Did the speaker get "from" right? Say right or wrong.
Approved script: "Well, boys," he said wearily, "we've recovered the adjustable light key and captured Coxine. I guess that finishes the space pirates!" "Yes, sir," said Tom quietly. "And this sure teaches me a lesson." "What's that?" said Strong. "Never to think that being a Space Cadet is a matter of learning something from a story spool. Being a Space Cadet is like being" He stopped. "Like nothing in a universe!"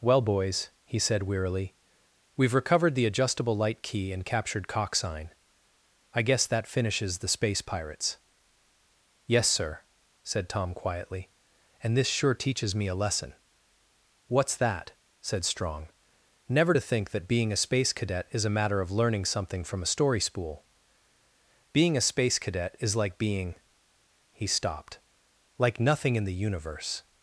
right